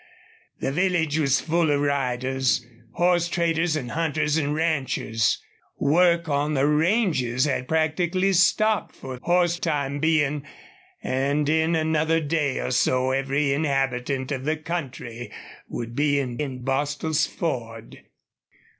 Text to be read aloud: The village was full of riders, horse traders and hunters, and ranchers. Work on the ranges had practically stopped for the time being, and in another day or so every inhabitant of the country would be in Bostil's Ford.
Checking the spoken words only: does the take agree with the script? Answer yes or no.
no